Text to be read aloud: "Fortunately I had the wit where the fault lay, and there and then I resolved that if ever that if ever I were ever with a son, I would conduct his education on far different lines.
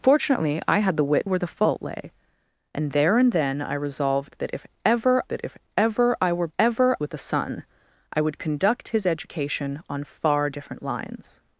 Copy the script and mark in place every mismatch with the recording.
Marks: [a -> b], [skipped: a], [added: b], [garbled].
"Fortunately I had the wit where the fault lay, and there and then I resolved that if ever that if ever I were ever with a son, I would conduct his education on far different lines.